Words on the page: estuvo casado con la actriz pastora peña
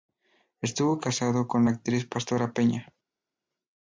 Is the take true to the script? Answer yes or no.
yes